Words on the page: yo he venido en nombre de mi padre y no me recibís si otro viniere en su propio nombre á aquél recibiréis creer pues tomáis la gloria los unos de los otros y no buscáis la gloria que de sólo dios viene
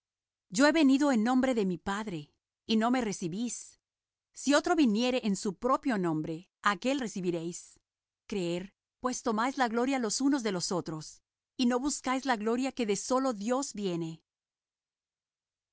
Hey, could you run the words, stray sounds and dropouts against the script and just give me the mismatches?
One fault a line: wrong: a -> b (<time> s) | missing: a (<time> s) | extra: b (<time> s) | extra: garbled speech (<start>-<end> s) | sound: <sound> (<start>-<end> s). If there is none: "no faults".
no faults